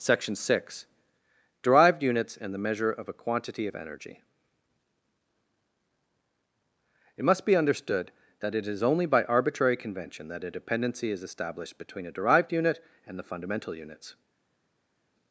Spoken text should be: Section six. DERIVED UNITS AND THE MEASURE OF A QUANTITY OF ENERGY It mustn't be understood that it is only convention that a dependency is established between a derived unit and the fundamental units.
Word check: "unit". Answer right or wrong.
right